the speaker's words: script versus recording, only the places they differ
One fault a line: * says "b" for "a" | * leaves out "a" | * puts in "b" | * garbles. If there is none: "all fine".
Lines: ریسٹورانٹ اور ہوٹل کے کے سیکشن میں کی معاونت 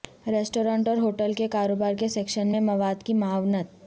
* puts in "کاروبار"
* puts in "مواد"